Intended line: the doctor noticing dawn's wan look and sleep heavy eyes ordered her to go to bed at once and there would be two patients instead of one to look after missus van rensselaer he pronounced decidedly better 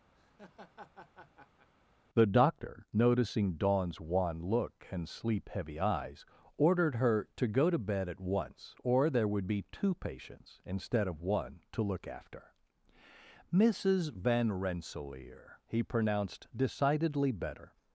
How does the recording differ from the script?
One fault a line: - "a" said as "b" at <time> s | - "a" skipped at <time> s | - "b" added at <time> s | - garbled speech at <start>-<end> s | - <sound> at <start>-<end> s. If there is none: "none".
- laugh at 0.1-1.7 s
- "and" said as "or" at 8.8 s